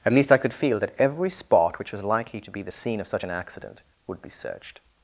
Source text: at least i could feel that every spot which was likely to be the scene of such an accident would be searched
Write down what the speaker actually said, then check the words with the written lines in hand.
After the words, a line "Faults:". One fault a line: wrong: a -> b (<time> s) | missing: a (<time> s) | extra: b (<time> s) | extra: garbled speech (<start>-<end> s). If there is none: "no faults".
at least i could feel that every spot which was likely to be the scene of such an accident would be searched
Faults:
no faults